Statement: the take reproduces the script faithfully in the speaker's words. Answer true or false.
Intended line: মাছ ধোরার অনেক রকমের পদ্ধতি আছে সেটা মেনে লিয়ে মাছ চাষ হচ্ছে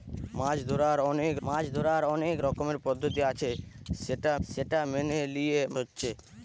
false